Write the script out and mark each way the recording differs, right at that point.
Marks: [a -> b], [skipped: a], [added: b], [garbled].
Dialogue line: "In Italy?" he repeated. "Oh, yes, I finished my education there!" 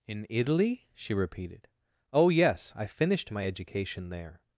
"In Italy?" [he -> she] repeated. "Oh, yes, I finished my education there!"